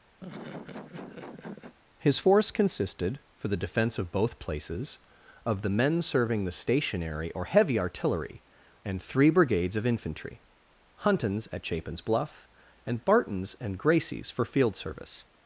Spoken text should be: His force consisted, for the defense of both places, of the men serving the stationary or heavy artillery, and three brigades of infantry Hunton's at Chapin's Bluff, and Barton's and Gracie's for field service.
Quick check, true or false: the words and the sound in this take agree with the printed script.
false